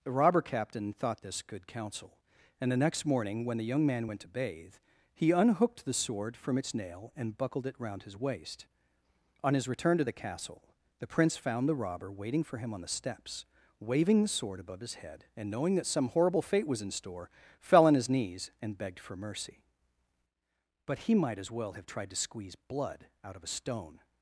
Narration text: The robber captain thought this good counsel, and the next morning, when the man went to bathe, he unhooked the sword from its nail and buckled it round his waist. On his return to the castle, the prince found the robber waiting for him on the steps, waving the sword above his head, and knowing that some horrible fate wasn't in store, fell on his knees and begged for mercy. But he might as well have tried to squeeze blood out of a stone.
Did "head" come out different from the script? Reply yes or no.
no